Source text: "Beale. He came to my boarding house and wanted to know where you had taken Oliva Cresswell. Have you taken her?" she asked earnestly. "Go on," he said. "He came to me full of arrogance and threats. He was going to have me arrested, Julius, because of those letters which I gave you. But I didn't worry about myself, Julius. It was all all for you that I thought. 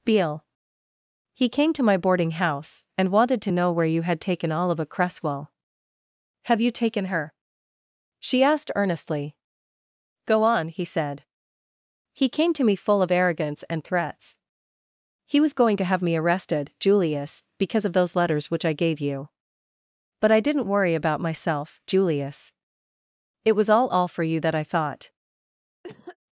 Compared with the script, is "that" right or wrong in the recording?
right